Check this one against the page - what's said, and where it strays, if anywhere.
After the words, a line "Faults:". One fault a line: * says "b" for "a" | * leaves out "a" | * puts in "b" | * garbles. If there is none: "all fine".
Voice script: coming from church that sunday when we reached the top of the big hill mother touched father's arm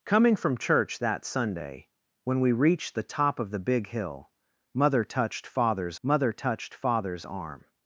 coming from church that sunday when we reached the top of the big hill mother touched father's mother touched father's arm
Faults:
* puts in "mother touched father's"